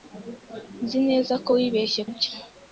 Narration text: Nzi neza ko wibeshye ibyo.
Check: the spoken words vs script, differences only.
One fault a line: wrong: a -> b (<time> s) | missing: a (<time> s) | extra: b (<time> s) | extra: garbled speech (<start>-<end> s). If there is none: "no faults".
no faults